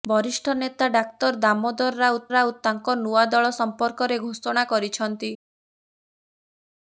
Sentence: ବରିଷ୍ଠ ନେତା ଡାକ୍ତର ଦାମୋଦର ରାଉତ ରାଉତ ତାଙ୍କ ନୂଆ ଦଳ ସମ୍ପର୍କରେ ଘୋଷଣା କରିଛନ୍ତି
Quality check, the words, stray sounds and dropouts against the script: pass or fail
pass